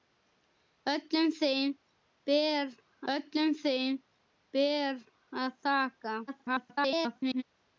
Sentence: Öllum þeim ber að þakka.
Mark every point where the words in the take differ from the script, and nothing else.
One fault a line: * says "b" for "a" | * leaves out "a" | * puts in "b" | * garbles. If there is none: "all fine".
* puts in "öllum þeim ber"
* garbles